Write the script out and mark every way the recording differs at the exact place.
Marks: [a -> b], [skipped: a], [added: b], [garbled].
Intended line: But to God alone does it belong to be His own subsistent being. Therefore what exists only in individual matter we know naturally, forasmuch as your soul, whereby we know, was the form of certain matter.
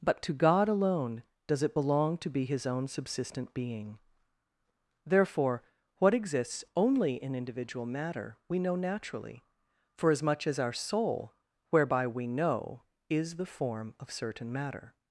But to God alone does it belong to be His own subsistent being. Therefore what exists only in individual matter we know naturally, forasmuch as [your -> our] soul, whereby we know, [was -> is] the form of certain matter.